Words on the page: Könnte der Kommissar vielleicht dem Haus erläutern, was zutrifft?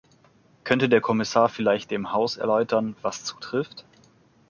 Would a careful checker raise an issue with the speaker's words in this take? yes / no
no